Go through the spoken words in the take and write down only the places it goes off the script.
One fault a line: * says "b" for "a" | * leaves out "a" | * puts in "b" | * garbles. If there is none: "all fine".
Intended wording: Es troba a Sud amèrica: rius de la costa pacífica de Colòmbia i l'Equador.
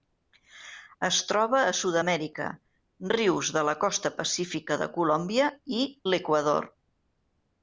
all fine